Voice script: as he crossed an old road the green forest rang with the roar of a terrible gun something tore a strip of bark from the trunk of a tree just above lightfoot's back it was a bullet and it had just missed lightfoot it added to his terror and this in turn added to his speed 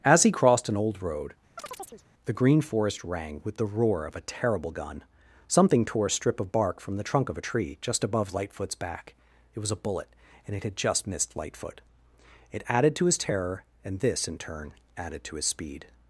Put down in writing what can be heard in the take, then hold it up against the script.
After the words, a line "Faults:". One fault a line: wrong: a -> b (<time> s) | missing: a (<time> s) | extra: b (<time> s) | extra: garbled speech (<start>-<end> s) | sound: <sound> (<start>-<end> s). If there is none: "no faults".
as he crossed an old road the green forest rang with the roar of a terrible gun something tore a strip of bark from the trunk of a tree just above lightfoot's back it was a bullet and it had just missed lightfoot it added to his terror and this in turn added to his speed
Faults:
sound: chirp (1.6-2.0 s)